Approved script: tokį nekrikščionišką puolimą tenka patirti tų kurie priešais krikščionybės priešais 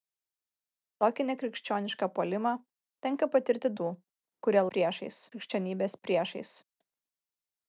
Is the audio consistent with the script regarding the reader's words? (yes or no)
yes